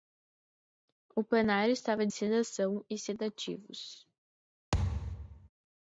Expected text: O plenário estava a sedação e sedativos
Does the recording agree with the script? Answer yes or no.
yes